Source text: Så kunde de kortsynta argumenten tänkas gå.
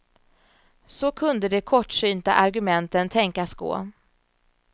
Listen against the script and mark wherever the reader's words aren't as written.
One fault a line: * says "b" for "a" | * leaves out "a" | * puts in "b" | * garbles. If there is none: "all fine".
all fine